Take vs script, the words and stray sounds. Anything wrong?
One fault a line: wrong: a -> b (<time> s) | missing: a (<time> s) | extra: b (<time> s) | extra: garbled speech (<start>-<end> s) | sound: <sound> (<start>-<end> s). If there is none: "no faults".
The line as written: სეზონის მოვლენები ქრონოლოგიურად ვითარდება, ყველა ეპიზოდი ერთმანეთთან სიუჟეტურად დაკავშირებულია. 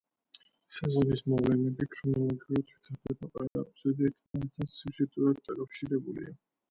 sound: dropout (3.5-3.6 s)
sound: dropout (4.3-4.3 s)